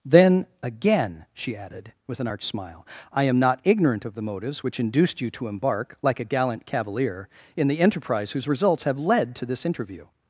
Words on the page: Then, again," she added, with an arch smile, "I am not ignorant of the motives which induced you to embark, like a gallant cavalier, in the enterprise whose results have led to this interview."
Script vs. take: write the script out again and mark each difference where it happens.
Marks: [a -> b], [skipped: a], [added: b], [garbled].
Then, again," she added, with an arch smile, "I am not ignorant of the motives which induced you to embark, like a gallant cavalier, in the enterprise whose results have led to this interview."